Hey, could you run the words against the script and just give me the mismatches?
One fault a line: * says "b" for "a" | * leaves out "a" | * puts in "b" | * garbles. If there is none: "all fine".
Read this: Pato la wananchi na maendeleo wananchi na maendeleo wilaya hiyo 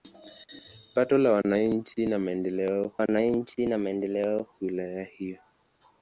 all fine